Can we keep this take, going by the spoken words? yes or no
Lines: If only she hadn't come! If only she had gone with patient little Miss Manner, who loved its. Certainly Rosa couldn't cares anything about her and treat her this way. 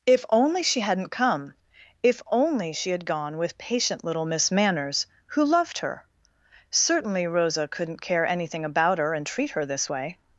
no